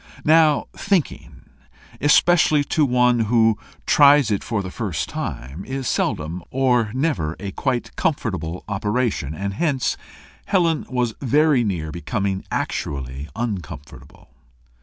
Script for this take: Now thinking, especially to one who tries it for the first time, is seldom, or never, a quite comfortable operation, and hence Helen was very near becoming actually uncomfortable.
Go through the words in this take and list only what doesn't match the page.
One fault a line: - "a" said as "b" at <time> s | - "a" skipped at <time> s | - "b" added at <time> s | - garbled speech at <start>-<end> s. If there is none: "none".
none